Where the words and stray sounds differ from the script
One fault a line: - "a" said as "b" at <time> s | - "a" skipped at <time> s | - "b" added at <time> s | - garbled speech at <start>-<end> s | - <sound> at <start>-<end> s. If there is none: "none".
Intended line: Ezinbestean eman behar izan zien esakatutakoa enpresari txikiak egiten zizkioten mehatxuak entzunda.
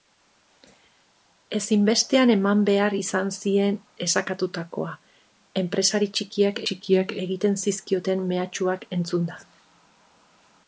- "txikiak" added at 6.7 s